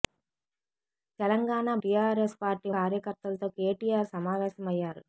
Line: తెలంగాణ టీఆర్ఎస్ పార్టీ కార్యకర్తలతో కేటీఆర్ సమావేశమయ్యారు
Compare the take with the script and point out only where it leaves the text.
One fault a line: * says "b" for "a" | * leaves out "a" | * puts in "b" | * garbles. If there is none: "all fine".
all fine